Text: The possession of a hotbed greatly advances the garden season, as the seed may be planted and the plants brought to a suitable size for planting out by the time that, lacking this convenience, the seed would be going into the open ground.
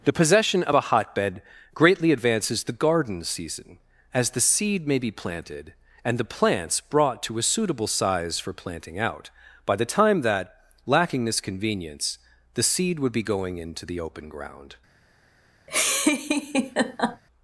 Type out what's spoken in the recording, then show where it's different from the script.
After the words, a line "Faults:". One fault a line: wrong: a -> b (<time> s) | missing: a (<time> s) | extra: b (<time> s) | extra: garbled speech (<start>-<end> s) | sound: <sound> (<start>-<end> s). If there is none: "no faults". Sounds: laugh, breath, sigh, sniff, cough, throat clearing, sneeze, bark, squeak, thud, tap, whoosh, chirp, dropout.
The possession of a hotbed greatly advances the garden season, as the seed may be planted and the plants brought to a suitable size for planting out by the time that, lacking this convenience, the seed would be going into the open ground.
Faults:
sound: laugh (15.7-17.2 s)